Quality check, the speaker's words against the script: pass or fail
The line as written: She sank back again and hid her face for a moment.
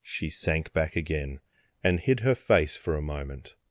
pass